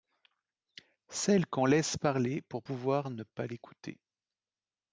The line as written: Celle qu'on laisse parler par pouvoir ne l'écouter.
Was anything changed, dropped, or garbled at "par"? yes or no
yes